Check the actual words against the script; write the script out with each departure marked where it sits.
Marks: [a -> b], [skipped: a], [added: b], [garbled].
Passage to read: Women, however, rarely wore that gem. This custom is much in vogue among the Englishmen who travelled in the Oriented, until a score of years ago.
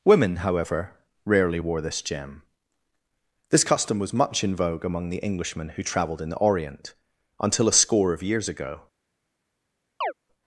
Women, however, rarely wore [that -> this] gem. This custom [is -> was] much in vogue among the Englishmen who travelled in the [Oriented, -> Orient] until a score of years ago.